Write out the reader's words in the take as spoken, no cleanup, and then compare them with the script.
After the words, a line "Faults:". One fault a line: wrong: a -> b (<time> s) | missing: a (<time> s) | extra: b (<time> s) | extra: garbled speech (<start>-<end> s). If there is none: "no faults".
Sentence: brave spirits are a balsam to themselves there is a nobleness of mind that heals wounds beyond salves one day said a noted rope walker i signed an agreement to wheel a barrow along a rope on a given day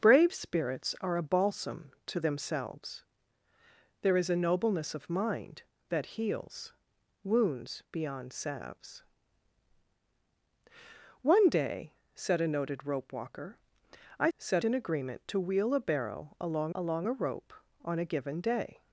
brave spirits are a balsam to themselves there is a nobleness of mind that heals wounds beyond salves one day said a noted rope walker i said an agreement to wheel a barrow along along a rope on a given day
Faults:
wrong: signed -> said (14.4 s)
extra: along (16.7 s)